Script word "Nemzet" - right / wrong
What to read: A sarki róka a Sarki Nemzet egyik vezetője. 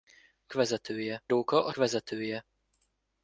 wrong